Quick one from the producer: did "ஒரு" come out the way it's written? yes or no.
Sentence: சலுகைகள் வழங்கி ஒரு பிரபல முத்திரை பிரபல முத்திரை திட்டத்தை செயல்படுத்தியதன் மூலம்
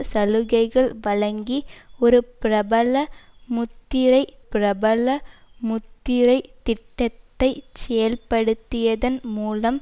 yes